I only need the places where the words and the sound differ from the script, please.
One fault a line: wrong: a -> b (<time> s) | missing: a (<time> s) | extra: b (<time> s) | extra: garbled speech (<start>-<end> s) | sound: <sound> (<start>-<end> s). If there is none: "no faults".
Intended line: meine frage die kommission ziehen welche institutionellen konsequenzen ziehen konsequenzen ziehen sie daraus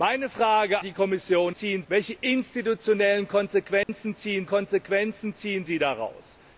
sound: dropout (3.8-3.9 s)